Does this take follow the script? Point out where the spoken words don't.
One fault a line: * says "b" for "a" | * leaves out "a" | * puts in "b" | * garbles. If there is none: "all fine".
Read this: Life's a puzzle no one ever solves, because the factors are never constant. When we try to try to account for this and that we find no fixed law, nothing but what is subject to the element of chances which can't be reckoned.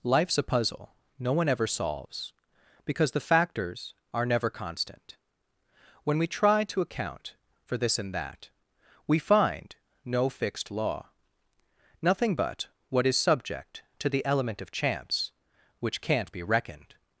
* leaves out "try to"
* says "chance" for "chances"